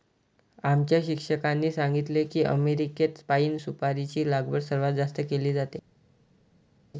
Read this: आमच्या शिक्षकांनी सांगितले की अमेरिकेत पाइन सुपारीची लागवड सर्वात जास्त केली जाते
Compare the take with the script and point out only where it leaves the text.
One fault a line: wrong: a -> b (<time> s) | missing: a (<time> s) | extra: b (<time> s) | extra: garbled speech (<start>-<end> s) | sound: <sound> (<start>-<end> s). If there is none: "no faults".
no faults